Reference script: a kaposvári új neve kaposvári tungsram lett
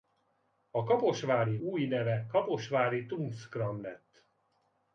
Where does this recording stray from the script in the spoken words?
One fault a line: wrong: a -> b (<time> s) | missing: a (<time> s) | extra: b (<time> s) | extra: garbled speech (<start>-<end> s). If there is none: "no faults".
no faults